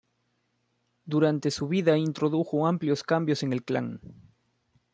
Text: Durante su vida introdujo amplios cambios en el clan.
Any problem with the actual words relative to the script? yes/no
no